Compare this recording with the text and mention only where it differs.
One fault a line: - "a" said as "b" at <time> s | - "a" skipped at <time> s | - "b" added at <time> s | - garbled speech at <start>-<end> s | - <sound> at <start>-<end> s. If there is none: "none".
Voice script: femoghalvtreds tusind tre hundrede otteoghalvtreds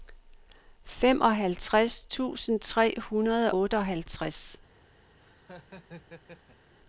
- laugh at 5.2-6.7 s